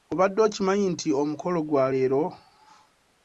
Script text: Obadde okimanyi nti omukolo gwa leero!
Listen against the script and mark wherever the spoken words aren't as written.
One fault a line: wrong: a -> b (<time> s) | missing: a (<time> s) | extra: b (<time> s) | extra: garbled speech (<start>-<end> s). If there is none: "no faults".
no faults